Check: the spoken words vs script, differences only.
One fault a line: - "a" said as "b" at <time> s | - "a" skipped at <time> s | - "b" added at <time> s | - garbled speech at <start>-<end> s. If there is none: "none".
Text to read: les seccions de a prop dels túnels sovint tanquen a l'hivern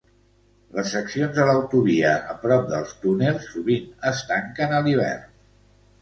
- "l'autovia" added at 1.5 s
- "es" added at 4.1 s